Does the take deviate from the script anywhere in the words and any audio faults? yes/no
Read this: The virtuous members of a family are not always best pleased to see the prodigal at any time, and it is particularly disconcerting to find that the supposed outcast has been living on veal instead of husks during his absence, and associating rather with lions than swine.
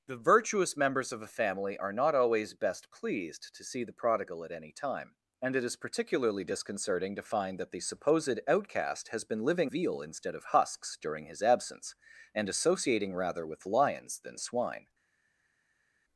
yes